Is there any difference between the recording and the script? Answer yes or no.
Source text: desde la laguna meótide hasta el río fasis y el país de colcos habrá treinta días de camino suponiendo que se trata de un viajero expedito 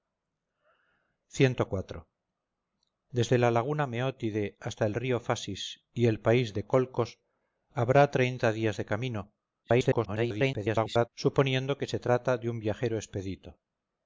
yes